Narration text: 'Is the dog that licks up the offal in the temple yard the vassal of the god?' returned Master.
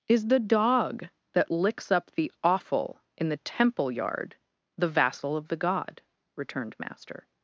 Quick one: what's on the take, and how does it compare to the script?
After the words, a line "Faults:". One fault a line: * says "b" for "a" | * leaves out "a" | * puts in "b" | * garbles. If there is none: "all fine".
'Is the dog that licks up the offal in the temple yard the vassal of the god?' returned Master.
Faults:
all fine